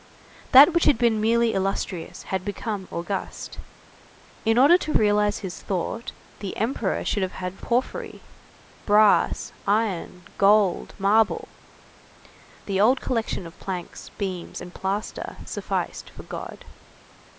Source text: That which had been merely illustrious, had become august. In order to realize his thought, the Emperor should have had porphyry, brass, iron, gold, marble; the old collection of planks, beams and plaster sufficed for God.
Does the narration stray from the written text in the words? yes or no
no